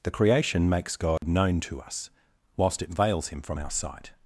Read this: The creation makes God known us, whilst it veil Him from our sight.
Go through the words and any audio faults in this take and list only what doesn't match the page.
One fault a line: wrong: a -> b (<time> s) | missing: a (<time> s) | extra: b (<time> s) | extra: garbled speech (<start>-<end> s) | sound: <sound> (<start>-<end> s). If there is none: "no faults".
sound: dropout (1.2-1.2 s)
extra: to (1.6 s)
wrong: veil -> veils (2.9 s)